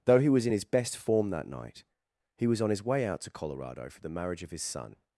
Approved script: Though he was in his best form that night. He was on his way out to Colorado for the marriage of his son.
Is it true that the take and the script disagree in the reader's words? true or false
false